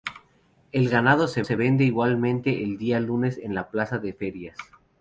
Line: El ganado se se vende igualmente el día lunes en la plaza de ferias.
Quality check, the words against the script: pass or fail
pass